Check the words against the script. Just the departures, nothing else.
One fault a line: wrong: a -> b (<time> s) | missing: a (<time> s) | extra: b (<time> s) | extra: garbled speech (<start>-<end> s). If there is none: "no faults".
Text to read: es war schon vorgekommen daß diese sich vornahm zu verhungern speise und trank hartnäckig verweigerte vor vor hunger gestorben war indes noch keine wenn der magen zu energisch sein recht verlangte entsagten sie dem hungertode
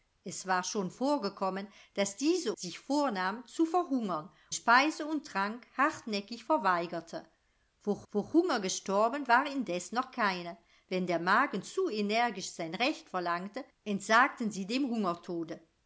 no faults